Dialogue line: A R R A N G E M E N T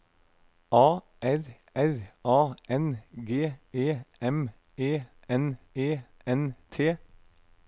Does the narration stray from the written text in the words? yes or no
yes